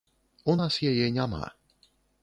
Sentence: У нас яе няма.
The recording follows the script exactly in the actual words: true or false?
true